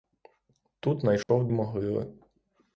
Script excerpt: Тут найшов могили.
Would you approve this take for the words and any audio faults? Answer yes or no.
no